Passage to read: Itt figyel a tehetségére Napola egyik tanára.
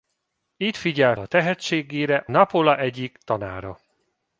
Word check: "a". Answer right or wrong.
right